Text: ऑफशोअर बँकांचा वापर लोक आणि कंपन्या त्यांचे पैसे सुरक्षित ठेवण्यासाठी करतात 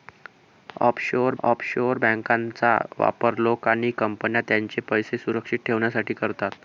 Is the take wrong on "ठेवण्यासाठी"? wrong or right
right